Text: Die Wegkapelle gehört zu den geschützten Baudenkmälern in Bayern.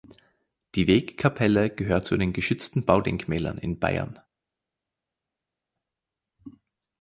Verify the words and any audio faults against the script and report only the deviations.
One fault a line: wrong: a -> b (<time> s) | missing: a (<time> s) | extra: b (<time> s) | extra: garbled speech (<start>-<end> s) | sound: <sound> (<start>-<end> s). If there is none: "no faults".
no faults